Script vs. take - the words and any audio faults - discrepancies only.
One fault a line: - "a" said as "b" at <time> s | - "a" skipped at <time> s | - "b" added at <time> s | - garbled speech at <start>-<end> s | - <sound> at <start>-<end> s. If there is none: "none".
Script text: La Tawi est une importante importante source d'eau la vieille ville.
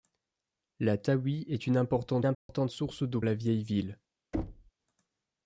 - dropout at 2.3-2.5 s
- thud at 4.3-4.7 s